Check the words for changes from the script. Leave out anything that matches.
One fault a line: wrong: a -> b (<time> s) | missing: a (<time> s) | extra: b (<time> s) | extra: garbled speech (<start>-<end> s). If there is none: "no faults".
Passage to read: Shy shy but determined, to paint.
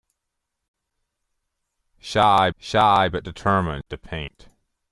no faults